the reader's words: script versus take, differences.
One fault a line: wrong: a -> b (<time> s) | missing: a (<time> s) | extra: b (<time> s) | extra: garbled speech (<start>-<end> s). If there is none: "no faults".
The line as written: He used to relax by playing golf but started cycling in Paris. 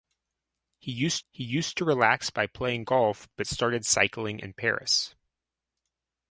extra: he used (1.3 s)